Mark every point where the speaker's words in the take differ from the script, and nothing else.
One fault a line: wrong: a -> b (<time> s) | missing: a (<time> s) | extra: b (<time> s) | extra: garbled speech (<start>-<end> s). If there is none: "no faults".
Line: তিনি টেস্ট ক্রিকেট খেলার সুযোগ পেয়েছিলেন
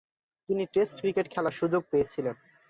no faults